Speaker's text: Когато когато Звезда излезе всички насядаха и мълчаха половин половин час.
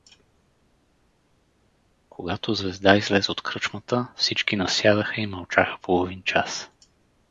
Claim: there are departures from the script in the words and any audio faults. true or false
true